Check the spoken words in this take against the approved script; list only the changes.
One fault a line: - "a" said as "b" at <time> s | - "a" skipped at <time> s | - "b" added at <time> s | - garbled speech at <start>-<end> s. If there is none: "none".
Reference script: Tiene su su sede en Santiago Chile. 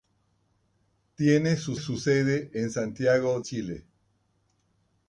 none